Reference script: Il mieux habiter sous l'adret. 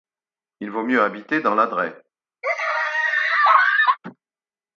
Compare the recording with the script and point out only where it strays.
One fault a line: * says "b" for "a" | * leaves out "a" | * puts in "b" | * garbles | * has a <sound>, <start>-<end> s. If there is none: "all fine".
* puts in "vaut"
* says "dans" for "sous"
* has a laugh, 2.4-4.0 s